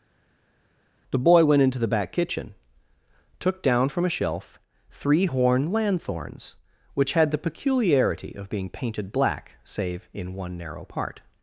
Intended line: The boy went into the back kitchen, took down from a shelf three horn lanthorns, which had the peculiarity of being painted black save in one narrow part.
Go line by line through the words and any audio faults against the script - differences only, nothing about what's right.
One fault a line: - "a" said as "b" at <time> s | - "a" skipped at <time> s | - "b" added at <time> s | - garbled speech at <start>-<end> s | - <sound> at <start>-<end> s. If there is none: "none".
none